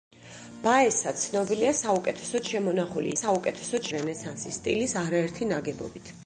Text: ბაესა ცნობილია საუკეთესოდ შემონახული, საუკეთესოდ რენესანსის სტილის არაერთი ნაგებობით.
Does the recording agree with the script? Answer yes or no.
yes